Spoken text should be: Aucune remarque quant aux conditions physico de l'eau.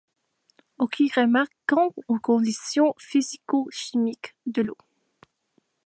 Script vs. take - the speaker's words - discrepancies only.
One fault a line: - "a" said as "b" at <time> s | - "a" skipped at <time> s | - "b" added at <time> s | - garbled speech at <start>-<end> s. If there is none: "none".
- "chimiques" added at 3.7 s